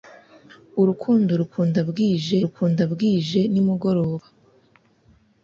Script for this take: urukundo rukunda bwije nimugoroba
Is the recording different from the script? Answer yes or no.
yes